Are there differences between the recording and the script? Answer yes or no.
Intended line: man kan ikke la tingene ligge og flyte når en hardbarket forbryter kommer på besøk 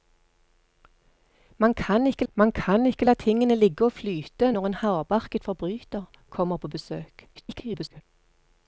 yes